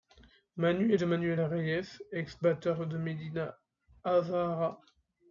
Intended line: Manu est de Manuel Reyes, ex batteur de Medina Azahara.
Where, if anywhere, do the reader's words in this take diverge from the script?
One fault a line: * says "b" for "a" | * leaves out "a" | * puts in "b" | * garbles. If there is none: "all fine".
all fine